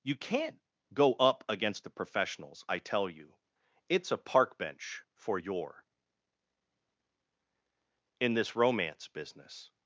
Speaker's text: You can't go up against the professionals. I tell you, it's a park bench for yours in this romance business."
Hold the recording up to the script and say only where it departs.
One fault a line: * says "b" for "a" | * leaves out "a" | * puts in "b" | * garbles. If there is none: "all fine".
* says "your" for "yours"